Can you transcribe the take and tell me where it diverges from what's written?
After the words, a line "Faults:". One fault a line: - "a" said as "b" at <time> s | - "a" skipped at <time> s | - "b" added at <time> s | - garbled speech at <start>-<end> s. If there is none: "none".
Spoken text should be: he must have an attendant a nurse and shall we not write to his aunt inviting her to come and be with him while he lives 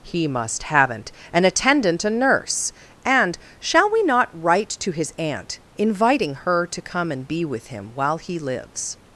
he must haven't an attendant a nurse and shall we not write to his aunt inviting her to come and be with him while he lives
Faults:
- "have" said as "haven't" at 0.6 s